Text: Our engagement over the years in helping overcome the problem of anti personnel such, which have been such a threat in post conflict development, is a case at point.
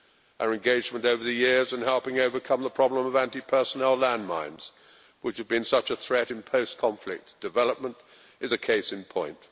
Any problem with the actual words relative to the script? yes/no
yes